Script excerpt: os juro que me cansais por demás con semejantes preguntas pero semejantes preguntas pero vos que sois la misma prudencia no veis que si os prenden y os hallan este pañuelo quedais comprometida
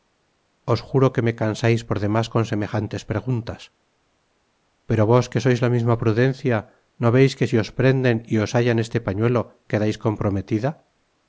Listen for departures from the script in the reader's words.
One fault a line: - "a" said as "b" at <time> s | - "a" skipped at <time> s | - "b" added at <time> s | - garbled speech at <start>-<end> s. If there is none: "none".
- "semejantes preguntas pero" skipped at 5.0 s